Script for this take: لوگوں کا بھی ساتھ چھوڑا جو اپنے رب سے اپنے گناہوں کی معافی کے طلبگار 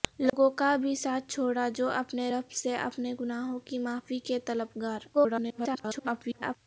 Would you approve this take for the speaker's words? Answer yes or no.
no